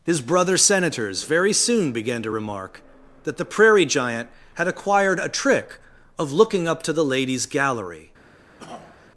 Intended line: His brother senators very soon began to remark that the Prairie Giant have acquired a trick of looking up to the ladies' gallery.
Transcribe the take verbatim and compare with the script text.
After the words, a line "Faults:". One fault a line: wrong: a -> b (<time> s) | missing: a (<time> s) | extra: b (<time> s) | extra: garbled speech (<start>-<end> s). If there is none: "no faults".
His brother senators very soon began to remark that the Prairie Giant had acquired a trick of looking up to the ladies' gallery.
Faults:
wrong: have -> had (4.5 s)